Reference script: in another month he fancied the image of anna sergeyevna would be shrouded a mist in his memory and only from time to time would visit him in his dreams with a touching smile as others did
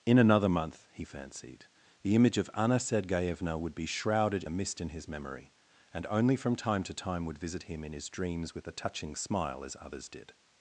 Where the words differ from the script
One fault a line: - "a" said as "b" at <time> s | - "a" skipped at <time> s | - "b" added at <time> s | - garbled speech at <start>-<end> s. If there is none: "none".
none